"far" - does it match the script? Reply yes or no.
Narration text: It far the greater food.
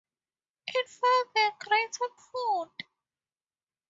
yes